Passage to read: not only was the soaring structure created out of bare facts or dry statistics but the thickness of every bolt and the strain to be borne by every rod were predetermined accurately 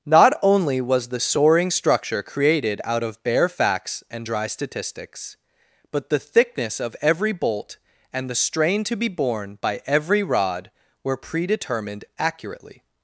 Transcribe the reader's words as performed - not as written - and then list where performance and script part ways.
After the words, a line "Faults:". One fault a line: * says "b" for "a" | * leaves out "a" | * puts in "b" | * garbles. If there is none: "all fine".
not only was the soaring structure created out of bare facts and dry statistics but the thickness of every bolt and the strain to be borne by every rod were predetermined accurately
Faults:
* says "and" for "or"